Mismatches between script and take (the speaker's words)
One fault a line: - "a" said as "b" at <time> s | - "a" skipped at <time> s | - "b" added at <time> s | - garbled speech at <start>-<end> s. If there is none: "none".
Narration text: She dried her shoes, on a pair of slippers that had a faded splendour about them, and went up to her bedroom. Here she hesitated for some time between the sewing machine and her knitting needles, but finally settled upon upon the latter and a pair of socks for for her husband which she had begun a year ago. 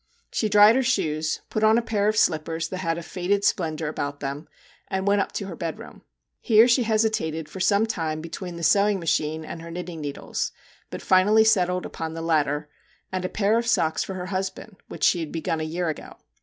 - "put" added at 1.5 s
- "upon" skipped at 12.1 s
- "for" skipped at 14.1 s